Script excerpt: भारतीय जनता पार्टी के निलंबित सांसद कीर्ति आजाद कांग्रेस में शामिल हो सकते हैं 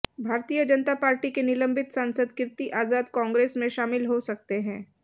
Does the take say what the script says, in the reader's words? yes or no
yes